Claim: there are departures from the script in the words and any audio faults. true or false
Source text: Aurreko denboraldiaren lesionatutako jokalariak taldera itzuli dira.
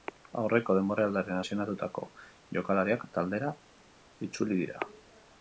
false